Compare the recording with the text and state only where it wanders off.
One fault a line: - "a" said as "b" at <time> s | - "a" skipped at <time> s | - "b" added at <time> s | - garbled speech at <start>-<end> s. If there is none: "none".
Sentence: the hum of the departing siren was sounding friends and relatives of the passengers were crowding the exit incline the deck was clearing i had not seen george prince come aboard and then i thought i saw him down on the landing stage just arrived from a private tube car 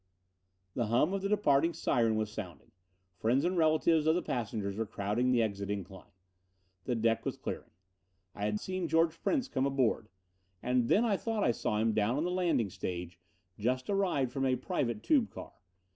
- "not" skipped at 8.6 s